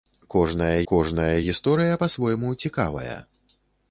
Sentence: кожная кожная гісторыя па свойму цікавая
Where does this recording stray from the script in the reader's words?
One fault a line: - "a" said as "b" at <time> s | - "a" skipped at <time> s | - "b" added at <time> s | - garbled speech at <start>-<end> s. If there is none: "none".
none